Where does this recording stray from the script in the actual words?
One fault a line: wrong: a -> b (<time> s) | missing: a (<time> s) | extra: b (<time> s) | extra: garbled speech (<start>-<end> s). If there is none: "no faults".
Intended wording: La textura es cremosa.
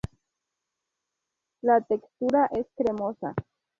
no faults